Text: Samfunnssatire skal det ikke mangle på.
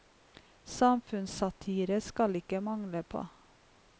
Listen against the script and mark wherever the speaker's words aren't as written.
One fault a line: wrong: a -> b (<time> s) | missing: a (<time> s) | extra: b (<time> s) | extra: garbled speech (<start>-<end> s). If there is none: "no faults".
no faults